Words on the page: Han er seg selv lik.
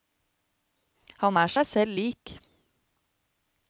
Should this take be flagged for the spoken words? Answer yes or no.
no